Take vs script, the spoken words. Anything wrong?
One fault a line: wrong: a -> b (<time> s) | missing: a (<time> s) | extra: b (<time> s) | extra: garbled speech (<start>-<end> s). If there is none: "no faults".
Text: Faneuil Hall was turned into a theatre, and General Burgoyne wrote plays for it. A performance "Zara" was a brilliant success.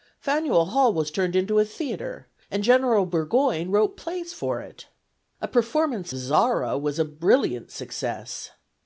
no faults